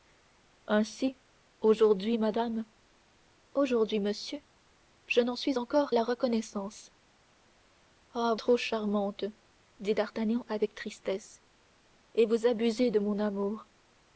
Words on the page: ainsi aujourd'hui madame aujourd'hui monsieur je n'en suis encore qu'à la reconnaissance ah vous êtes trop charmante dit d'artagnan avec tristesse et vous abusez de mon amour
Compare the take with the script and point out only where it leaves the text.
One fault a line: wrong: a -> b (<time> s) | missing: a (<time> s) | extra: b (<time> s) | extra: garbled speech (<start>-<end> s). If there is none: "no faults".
missing: qu'à (5.9 s)
missing: vous êtes (8.3 s)